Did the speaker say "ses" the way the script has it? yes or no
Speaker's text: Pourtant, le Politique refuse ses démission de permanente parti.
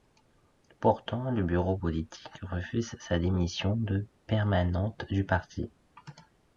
no